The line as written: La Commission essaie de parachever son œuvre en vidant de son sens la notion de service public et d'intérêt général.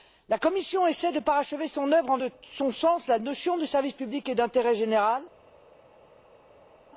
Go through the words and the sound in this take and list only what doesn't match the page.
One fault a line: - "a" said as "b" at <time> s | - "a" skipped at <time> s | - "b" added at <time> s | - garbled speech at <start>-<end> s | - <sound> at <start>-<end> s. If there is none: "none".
- "vidant" skipped at 2.2 s